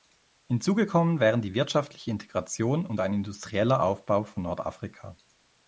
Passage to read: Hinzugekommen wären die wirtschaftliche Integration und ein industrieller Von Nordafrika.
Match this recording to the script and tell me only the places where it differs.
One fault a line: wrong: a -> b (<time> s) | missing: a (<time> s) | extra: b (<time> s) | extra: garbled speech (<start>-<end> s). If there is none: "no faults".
extra: Aufbau (3.8 s)